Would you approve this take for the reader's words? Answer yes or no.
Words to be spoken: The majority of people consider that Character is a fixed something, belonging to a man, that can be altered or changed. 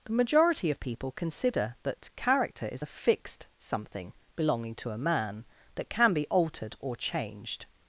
yes